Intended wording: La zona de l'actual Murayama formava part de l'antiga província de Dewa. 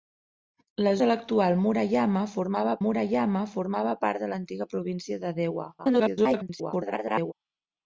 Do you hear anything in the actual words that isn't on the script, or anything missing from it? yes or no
yes